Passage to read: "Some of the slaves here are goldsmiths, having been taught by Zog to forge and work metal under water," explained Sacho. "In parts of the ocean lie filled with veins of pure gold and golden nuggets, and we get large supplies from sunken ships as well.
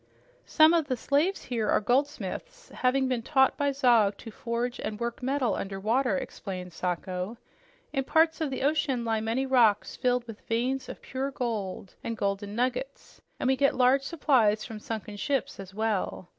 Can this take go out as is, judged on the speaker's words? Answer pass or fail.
fail